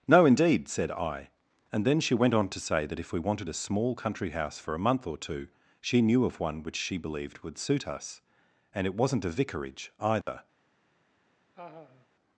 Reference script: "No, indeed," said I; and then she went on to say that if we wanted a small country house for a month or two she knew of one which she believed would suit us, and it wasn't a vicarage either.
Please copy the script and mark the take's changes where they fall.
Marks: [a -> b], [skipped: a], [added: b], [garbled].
"No, indeed," said I; and then she went on to say that if we wanted a small country house for a month or two she knew of one which she believed would suit us, and it wasn't a vicarage either.